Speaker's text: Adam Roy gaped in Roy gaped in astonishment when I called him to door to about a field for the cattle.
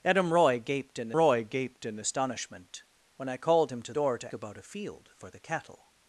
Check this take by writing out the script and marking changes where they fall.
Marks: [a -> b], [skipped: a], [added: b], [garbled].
Adam Roy gaped in Roy gaped in astonishment when I called him to door to about a field for the cattle.